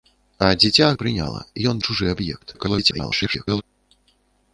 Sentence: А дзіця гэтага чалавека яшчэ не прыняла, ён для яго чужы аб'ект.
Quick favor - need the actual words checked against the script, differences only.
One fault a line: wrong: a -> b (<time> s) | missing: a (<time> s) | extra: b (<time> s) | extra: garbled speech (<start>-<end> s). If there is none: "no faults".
missing: гэтага чалавека яшчэ (0.9 s)
missing: для яго (1.8 s)
extra: garbled speech (2.5-3.6 s)